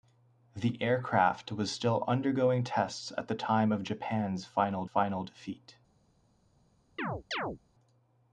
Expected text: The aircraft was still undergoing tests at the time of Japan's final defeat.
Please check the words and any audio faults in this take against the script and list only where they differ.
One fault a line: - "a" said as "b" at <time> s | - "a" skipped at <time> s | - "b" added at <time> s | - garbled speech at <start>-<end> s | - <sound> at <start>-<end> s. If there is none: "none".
- "final" added at 4.8 s
- chirp at 7.0-7.6 s